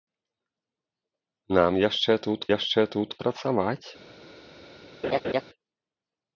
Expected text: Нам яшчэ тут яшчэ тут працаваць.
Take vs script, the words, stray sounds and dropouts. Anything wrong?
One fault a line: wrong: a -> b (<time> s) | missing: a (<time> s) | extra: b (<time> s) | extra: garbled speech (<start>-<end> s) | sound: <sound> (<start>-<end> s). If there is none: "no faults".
sound: laugh (5.0-5.4 s)